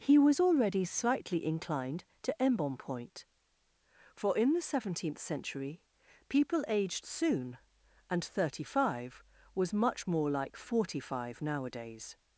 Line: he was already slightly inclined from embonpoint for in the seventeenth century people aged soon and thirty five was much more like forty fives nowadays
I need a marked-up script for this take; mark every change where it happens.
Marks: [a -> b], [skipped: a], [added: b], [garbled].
he was already slightly inclined [from -> to] embonpoint for in the seventeenth century people aged soon and thirty five was much more like forty [fives -> five] nowadays